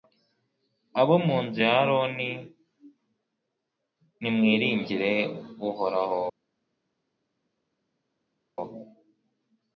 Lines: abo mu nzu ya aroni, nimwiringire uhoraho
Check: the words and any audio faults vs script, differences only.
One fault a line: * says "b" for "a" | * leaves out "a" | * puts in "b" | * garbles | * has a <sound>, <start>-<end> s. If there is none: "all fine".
all fine